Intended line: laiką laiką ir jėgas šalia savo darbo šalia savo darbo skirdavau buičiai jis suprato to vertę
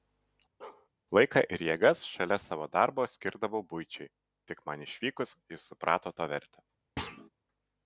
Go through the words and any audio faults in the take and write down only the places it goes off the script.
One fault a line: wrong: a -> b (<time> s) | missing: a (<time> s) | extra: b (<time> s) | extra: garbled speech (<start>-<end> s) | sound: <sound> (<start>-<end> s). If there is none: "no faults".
sound: bark (0.6-0.9 s)
missing: laiką (1.4 s)
wrong: šalia savo darbo skirdavau buičiai -> skirdavau buičiai tik man išvykus (3.1 s)
sound: thud (7.0-7.3 s)